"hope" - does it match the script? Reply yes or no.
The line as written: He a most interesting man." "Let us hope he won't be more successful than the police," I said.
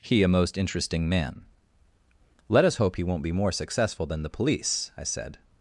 yes